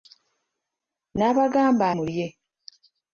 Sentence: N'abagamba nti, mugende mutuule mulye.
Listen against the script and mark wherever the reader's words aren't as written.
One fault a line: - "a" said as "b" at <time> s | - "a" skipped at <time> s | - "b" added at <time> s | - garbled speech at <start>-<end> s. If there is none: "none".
- "nti mugende mutuule" skipped at 1.9 s